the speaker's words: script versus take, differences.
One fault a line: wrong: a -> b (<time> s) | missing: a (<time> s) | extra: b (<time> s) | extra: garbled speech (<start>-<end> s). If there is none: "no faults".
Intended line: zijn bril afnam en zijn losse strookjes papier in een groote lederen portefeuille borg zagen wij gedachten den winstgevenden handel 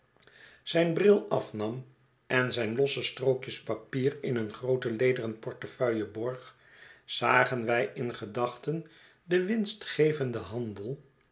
extra: in (7.9 s)